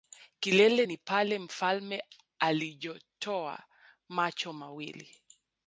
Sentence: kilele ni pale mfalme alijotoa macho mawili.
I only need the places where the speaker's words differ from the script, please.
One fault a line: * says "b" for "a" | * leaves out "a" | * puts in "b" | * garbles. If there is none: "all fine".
all fine